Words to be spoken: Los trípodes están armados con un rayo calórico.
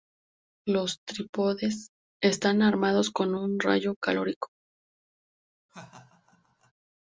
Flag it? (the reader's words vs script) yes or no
no